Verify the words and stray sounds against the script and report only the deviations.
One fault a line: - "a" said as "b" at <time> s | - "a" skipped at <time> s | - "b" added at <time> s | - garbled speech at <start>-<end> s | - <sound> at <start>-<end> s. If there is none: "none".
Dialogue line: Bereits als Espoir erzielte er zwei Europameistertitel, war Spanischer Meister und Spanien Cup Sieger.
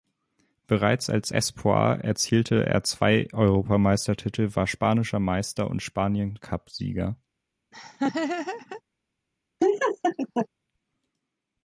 - laugh at 7.7-8.8 s
- laugh at 9.6-10.5 s